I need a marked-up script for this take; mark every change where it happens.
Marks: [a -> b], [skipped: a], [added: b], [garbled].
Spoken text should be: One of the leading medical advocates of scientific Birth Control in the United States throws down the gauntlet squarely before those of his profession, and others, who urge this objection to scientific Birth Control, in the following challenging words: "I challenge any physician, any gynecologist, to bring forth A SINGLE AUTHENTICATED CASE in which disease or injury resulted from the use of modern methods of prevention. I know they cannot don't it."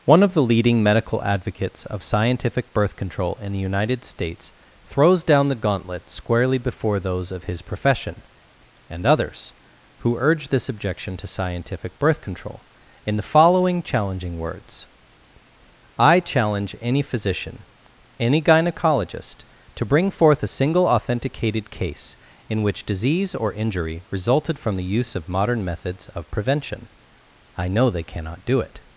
One of the leading medical advocates of scientific Birth Control in the United States throws down the gauntlet squarely before those of his profession, and others, who urge this objection to scientific Birth Control, in the following challenging words: "I challenge any physician, any gynecologist, to bring forth A SINGLE AUTHENTICATED CASE in which disease or injury resulted from the use of modern methods of prevention. I know they cannot [don't -> do] it."